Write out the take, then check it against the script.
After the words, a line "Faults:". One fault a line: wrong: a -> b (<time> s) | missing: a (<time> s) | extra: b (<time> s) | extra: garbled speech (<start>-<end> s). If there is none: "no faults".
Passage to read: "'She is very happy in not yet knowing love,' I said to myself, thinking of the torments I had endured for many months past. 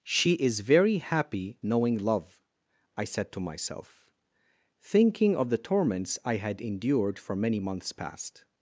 "'She is very happy knowing love,' I said to myself, thinking of the torments I had endured for many months past.
Faults:
missing: in not yet (1.6 s)